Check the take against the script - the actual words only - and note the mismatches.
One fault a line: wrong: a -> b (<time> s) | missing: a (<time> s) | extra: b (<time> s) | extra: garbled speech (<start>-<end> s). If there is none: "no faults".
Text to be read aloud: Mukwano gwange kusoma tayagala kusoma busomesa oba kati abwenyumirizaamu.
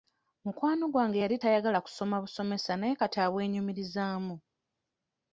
wrong: kusoma -> yali (1.2 s)
wrong: oba -> naye (2.8 s)